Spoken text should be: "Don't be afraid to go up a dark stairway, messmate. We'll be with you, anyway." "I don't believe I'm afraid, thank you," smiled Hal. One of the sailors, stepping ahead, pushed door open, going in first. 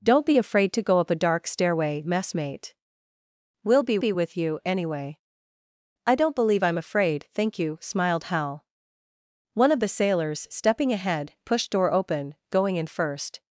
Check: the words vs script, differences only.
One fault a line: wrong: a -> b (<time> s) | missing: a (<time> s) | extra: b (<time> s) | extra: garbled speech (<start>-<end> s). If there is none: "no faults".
extra: be (4.0 s)